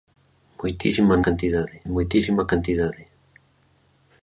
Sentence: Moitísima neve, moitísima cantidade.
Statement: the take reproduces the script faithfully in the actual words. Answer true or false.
false